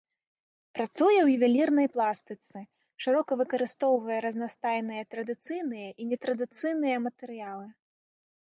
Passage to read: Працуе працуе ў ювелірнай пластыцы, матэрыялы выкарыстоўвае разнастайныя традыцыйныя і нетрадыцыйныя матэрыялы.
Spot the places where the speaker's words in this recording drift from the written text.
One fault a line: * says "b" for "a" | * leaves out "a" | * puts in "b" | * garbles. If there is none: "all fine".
* leaves out "працуе"
* says "шырока" for "матэрыялы"